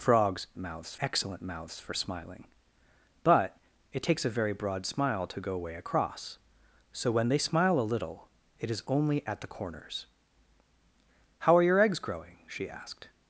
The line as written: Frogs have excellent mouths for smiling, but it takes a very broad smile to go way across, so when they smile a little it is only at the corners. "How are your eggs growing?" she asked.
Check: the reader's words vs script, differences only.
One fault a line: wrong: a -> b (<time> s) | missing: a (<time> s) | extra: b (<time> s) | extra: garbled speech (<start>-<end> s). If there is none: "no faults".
wrong: have -> mouths (0.6 s)